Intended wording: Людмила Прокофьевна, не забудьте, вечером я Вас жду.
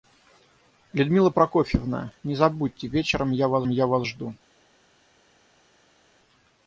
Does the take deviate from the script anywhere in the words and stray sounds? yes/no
yes